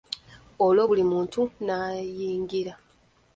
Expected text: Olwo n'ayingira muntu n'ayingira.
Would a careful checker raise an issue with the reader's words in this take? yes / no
yes